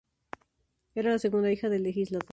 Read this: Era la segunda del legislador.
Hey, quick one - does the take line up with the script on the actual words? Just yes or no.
no